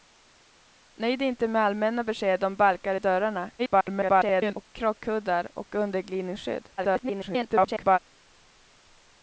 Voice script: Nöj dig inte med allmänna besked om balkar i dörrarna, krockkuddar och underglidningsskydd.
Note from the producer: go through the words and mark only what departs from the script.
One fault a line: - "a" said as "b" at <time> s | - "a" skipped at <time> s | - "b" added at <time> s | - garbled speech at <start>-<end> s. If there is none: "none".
- garbled speech at 3.6-4.7 s
- garbled speech at 6.8-8.0 s